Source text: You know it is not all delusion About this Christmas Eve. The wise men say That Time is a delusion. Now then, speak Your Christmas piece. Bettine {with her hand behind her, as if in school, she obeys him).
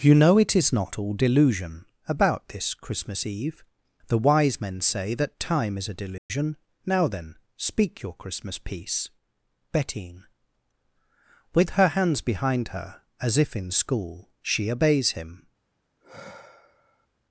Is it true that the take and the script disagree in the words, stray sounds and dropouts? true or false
true